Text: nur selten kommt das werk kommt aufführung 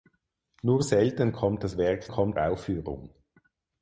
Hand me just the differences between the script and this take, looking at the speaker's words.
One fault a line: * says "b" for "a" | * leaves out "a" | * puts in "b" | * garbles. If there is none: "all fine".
all fine